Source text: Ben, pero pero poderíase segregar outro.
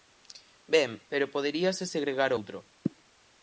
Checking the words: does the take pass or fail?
fail